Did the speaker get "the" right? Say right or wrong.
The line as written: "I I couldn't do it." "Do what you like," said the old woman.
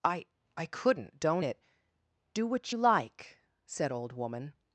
wrong